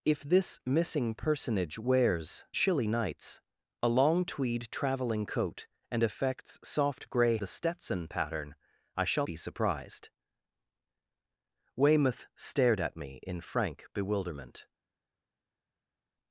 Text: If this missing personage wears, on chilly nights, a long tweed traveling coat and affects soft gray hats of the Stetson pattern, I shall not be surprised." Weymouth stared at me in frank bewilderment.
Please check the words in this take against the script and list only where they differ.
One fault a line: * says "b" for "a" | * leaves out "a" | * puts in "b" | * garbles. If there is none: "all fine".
* leaves out "on"
* leaves out "hats of"
* leaves out "not"